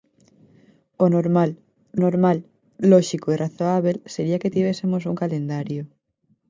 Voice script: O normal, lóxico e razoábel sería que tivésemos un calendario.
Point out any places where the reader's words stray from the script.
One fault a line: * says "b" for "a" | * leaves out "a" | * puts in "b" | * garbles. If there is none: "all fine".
* puts in "normal"